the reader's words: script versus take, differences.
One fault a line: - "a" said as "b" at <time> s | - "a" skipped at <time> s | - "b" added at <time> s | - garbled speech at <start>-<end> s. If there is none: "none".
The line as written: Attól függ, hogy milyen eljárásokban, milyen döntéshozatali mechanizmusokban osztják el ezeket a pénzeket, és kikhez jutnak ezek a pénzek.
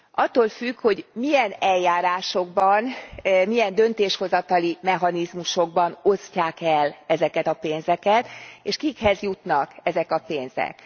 none